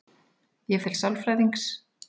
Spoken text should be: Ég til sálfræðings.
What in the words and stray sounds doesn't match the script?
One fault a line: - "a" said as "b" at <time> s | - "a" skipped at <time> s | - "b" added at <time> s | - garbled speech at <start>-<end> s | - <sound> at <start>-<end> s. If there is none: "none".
none